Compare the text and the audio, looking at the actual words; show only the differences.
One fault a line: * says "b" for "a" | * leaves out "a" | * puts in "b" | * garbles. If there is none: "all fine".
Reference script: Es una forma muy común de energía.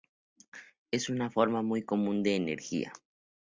all fine